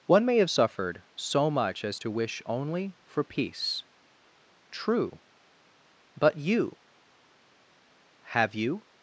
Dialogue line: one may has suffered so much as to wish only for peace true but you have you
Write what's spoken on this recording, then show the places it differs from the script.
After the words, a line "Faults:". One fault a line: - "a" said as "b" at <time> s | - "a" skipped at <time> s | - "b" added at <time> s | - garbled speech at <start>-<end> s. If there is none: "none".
one may have suffered so much as to wish only for peace true but you have you
Faults:
- "has" said as "have" at 0.4 s